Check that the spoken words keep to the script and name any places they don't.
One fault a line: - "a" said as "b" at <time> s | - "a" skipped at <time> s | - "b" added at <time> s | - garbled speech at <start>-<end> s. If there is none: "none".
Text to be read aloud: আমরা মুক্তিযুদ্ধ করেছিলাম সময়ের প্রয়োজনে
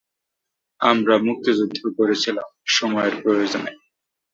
none